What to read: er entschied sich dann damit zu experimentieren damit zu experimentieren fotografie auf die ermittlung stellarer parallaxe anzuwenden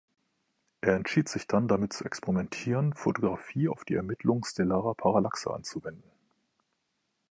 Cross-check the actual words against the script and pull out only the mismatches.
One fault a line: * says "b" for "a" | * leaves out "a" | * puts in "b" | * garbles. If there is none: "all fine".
* leaves out "damit zu experimentieren"